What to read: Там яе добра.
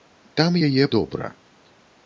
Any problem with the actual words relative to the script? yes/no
no